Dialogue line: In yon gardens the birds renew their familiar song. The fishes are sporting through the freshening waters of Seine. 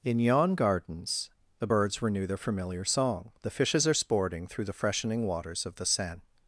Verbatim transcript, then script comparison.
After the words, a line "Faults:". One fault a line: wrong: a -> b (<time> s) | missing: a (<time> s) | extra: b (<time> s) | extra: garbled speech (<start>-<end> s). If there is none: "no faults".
In yon gardens the birds renew their familiar song. The fishes are sporting through the freshening waters of the Seine.
Faults:
extra: the (5.7 s)